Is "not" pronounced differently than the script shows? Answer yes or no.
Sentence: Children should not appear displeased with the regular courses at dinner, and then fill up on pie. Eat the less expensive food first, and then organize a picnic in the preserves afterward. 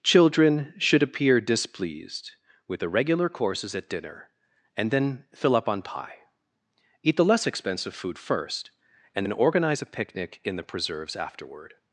yes